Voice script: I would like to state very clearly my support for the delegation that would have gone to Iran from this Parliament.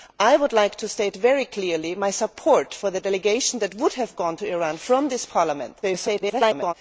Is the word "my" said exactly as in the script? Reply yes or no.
yes